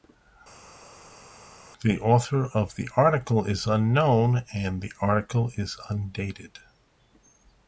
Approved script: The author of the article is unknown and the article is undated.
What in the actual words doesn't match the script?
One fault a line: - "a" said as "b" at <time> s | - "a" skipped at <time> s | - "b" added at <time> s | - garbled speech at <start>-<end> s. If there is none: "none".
none